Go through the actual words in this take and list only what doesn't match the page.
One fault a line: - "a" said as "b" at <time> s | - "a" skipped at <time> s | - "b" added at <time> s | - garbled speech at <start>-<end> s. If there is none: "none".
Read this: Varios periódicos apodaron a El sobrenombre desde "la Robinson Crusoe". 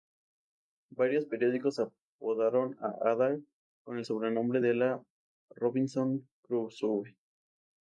- "Ada con" added at 3.1 s
- "desde" said as "de" at 4.6 s